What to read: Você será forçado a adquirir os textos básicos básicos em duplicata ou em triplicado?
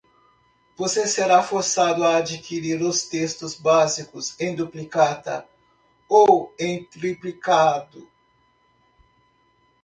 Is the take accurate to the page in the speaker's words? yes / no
no